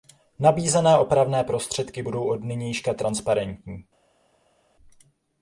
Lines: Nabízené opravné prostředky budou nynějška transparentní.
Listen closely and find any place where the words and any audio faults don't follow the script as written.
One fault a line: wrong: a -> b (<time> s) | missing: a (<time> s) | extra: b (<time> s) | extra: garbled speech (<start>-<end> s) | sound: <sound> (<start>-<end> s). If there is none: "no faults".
extra: od (2.3 s)